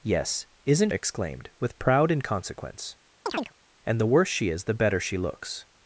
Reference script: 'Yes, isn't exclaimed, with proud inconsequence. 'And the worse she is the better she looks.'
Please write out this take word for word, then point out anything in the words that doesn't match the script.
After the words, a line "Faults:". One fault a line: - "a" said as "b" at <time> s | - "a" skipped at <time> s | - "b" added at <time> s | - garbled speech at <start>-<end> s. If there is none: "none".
'Yes, isn't exclaimed, with proud inconsequence. 'And the worse she is the better she looks.'
Faults:
none